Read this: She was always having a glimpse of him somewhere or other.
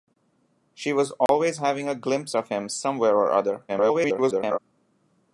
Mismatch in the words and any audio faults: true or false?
true